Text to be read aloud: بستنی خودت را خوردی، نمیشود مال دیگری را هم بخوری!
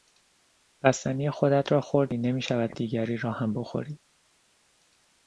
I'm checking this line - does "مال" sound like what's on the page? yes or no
no